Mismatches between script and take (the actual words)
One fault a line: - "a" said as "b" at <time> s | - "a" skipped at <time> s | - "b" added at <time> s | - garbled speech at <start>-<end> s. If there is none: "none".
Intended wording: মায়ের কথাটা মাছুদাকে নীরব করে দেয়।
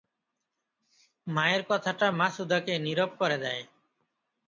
none